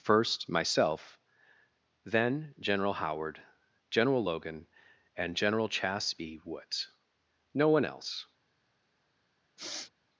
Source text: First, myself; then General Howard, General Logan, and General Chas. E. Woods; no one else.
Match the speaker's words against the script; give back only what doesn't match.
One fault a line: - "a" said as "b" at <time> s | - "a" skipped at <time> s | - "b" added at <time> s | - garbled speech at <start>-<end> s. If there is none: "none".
- "E" said as "B" at 6.1 s